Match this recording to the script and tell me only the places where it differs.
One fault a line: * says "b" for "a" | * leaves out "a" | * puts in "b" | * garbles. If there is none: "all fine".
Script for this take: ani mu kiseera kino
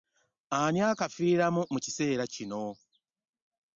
* puts in "akafiiramu"